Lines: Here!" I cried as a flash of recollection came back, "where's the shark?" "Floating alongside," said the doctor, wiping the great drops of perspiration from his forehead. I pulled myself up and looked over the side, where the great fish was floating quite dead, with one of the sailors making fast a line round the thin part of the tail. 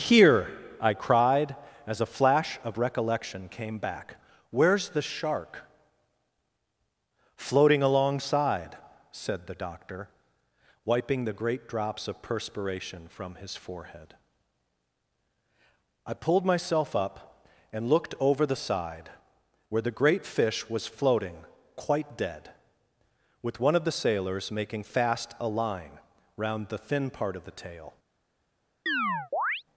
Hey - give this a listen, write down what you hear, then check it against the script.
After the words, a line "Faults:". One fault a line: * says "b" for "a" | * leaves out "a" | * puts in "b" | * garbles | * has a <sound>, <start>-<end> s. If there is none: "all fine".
Here!" I cried as a flash of recollection came back, "where's the shark?" "Floating alongside," said the doctor, wiping the great drops of perspiration from his forehead. I pulled myself up and looked over the side, where the great fish was floating quite dead, with one of the sailors making fast a line round the thin part of the tail.
Faults:
* has a chirp, 28.9-29.6 s